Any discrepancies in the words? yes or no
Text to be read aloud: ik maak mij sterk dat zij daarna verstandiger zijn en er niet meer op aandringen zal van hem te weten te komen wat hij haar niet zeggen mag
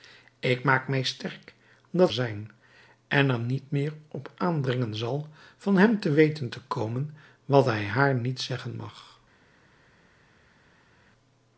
yes